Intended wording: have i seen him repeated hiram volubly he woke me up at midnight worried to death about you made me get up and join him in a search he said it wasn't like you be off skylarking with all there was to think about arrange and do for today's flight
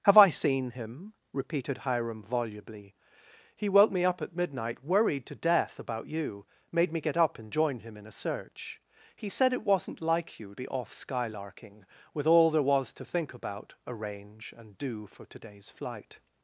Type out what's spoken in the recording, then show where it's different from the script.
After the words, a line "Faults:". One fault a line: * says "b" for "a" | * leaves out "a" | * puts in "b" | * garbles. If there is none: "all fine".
have i seen him repeated hiram volubly he woke me up at midnight worried to death about you made me get up and join him in a search he said it wasn't like you be off skylarking with all there was to think about arrange and do for today's flight
Faults:
all fine